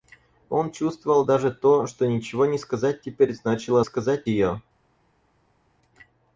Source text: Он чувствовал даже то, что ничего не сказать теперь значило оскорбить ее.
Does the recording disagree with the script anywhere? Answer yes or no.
yes